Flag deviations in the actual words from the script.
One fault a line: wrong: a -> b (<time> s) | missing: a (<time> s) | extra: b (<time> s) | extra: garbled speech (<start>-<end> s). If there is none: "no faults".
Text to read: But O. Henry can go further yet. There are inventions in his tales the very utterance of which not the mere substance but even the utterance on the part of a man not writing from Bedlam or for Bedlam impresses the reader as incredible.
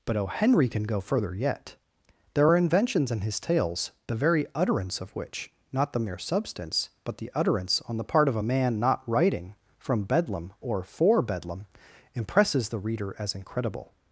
missing: even (7.2 s)